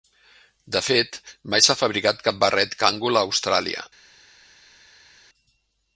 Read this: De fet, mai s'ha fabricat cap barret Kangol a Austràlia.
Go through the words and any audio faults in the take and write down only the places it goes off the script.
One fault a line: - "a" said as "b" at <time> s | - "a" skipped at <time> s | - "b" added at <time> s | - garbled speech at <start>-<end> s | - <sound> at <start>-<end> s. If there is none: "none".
none